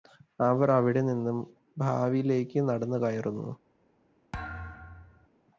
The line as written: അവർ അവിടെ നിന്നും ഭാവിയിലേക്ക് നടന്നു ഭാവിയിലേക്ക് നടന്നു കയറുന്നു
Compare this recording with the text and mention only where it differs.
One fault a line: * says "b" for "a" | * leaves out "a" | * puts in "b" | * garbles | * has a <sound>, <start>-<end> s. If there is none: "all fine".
* leaves out "ഭാവിയിലേക്ക് നടന്നു"
* has a thud, 4.3-5.3 s